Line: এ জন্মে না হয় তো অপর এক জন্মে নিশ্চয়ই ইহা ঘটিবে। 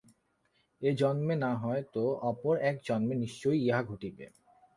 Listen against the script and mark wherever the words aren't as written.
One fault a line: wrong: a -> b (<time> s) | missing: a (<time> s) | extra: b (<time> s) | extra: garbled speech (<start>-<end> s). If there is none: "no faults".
no faults